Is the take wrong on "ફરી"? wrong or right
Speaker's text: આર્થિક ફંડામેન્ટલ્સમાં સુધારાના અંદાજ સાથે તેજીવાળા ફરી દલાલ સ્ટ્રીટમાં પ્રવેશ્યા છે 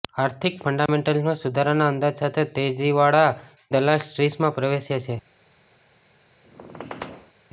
wrong